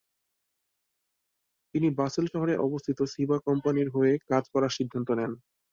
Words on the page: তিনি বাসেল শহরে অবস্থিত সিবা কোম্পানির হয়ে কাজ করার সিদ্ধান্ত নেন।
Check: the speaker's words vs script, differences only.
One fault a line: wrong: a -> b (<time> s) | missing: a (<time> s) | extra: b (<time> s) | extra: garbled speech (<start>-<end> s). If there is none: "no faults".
no faults